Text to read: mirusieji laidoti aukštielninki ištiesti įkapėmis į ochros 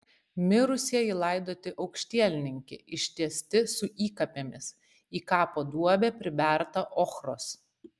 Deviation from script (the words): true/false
true